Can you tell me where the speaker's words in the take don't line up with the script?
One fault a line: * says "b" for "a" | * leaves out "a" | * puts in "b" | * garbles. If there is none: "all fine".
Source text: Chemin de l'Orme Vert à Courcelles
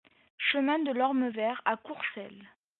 all fine